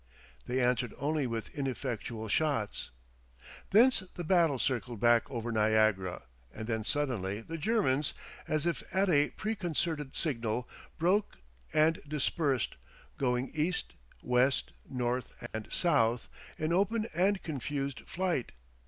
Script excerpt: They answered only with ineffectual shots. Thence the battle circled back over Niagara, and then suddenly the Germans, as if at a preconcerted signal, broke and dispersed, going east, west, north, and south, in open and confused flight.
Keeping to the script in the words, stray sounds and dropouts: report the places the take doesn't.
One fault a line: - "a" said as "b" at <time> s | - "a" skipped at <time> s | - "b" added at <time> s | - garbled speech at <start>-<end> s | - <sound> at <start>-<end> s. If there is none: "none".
- dropout at 15.5-15.5 s